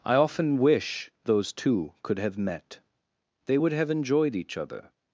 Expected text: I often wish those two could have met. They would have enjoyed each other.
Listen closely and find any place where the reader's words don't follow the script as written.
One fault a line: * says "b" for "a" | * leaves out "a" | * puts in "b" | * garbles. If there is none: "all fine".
all fine